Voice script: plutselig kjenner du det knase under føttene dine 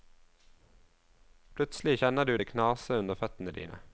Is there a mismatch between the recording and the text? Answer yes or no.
no